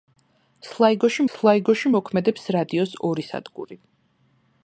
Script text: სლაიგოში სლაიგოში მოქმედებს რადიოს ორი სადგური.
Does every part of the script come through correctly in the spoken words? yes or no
yes